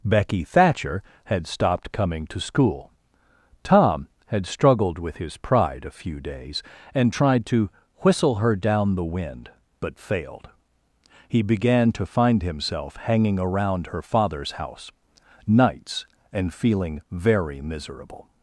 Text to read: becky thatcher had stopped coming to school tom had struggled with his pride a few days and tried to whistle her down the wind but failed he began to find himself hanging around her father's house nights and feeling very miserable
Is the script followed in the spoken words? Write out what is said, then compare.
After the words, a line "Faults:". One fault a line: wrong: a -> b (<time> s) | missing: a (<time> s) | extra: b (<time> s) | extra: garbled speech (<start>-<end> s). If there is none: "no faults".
becky thatcher had stopped coming to school tom had struggled with his pride a few days and tried to whistle her down the wind but failed he began to find himself hanging around her father's house nights and feeling very miserable
Faults:
no faults